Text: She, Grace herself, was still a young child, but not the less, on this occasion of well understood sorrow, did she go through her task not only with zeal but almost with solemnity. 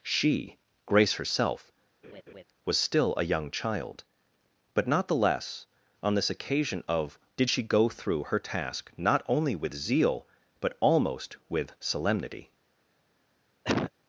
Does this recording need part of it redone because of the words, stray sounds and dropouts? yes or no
yes